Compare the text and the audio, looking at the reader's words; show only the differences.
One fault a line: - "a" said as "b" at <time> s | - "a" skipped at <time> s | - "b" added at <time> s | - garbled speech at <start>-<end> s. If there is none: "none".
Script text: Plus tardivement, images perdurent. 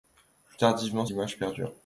none